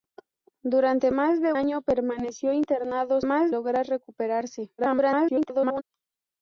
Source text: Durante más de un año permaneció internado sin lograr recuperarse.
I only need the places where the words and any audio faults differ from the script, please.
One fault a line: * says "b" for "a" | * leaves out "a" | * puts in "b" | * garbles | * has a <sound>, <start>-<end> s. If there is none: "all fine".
* leaves out "un"
* says "más" for "sin"
* garbles